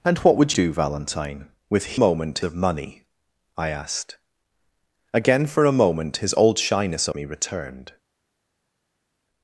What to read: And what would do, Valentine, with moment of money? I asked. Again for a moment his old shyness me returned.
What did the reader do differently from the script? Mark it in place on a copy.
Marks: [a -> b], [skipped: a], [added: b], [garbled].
And what would do, Valentine, with moment of money? I asked. Again for a moment his old shyness me returned.